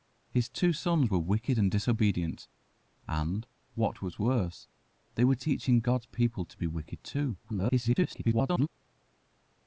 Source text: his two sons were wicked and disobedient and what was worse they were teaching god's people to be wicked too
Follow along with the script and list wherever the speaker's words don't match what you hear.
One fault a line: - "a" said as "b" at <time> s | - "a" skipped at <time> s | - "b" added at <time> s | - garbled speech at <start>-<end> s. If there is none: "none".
- garbled speech at 7.4-8.7 s